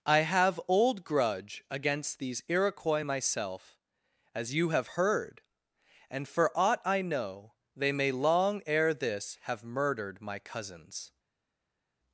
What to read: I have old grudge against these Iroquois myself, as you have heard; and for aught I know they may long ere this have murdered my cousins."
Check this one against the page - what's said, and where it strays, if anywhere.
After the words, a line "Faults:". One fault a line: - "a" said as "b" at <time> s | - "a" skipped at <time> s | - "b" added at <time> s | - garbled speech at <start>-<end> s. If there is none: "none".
I have old grudge against these Iroquois myself, as you have heard; and for aught I know they may long ere this have murdered my cousins."
Faults:
none